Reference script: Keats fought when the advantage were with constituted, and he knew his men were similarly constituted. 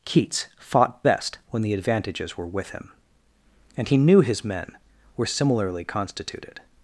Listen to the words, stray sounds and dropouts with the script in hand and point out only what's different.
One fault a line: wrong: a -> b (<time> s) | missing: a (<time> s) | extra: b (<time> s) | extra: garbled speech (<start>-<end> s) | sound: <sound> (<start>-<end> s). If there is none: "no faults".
extra: best (1.0 s)
wrong: advantage -> advantages (1.7 s)
wrong: constituted -> him (2.7 s)